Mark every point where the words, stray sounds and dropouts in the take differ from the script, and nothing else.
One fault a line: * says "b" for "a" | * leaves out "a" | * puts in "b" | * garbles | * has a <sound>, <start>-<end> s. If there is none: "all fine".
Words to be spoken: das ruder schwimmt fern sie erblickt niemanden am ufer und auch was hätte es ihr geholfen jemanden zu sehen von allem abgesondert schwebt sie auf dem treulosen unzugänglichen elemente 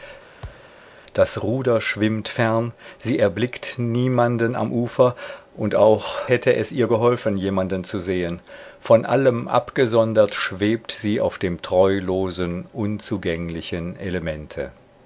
* has a thud, 0.4-0.7 s
* leaves out "was"